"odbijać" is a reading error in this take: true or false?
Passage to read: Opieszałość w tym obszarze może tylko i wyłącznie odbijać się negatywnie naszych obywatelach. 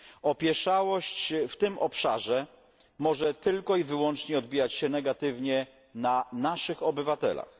false